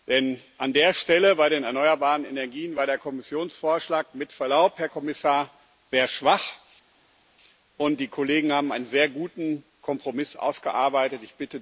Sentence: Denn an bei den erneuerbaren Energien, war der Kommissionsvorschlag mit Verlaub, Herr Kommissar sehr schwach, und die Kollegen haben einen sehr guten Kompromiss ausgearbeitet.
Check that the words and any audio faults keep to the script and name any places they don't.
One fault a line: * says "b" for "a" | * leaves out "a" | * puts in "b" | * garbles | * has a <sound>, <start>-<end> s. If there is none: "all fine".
* puts in "der Stelle"